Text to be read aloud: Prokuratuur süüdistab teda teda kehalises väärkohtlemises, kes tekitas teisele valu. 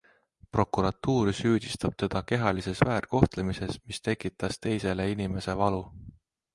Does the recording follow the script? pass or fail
fail